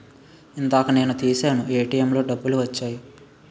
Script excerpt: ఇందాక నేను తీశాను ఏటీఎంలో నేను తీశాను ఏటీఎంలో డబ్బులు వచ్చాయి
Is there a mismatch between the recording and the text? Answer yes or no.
yes